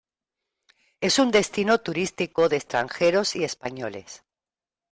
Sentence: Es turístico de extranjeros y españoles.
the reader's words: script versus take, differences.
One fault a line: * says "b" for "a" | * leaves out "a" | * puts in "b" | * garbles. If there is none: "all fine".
* puts in "un destino"